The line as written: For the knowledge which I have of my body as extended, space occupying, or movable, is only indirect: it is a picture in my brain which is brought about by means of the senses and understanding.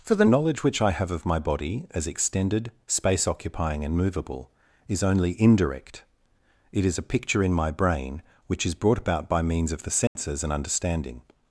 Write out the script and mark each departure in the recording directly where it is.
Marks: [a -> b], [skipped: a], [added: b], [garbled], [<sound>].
For the knowledge which I have of my body as extended, space occupying, [or -> and] movable, is only indirect: it is a picture in my brain which is brought about by means of the senses [dropout] and understanding.